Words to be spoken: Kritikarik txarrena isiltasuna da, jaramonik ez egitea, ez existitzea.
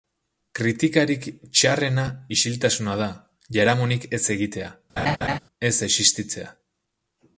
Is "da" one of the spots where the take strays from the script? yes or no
no